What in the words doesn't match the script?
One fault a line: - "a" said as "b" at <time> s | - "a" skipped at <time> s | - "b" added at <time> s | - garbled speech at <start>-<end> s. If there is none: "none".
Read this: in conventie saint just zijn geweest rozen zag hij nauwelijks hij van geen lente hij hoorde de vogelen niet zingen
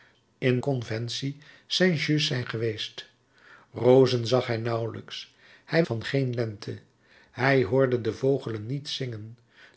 none